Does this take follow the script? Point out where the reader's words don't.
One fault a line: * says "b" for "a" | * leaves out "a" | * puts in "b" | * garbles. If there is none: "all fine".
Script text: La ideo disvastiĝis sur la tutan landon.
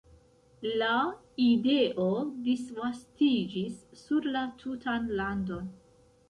all fine